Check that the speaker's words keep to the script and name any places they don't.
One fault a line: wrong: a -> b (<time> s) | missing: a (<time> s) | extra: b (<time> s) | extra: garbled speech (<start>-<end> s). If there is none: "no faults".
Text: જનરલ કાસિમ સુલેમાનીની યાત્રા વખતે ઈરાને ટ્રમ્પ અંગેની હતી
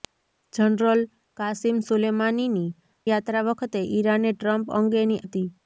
no faults